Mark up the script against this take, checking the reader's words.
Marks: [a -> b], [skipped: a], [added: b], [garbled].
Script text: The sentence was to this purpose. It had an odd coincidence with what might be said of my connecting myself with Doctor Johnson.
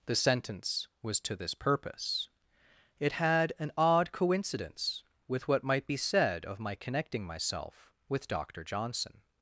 The sentence was to this purpose. It had an odd coincidence with what might be said of my connecting myself with Doctor Johnson.